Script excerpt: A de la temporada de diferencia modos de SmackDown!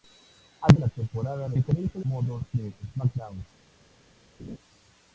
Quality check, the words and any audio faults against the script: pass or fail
fail